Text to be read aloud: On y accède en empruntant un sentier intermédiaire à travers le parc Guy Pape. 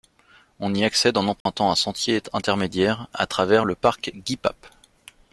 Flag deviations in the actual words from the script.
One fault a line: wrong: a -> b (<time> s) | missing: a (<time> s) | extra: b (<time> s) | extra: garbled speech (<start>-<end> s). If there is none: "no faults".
no faults